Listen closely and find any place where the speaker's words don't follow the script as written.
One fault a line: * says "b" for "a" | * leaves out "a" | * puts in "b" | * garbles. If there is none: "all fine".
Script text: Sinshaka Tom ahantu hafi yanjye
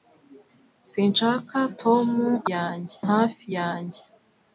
* says "yanjye" for "ahantu"